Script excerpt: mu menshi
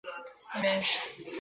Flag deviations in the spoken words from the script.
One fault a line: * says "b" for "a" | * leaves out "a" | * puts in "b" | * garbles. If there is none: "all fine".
all fine